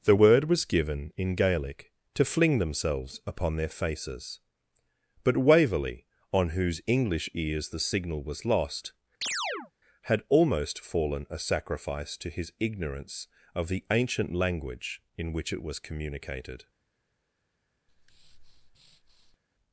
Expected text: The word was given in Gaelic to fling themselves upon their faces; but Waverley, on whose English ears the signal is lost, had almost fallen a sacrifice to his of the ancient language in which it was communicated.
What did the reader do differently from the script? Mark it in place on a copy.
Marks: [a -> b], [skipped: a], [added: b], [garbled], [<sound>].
The word was given in Gaelic to fling themselves upon their faces; but Waverley, on whose English ears the signal [is -> was] lost, [chirp] had almost fallen a sacrifice to his [added: ignorance] of the ancient language in which it was communicated. [breath]